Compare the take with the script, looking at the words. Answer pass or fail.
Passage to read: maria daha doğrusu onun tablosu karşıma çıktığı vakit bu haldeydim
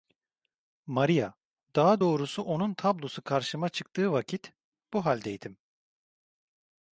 pass